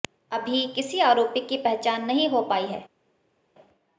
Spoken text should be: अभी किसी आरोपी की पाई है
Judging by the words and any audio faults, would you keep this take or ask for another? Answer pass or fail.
fail